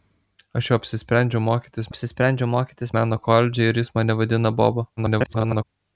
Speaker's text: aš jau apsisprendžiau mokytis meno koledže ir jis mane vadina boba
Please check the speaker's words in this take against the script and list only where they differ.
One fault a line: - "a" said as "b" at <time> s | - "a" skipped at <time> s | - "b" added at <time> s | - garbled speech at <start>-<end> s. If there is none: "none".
- "apsisprendžiau mokytis" added at 1.9 s
- garbled speech at 5.0-5.6 s